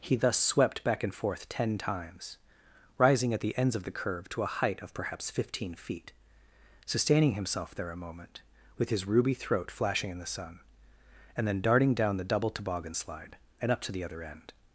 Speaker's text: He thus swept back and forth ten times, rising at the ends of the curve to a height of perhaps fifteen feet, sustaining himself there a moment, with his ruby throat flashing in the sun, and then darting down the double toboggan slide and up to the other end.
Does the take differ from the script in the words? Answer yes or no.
no